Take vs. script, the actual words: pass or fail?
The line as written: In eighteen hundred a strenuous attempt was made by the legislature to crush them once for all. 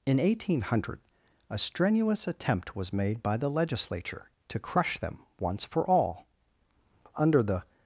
fail